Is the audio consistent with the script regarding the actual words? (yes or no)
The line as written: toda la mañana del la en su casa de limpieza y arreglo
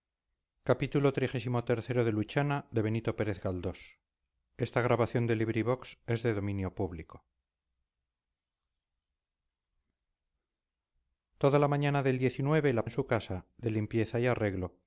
yes